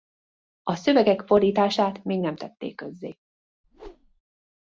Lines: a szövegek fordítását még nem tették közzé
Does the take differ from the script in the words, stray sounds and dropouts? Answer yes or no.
yes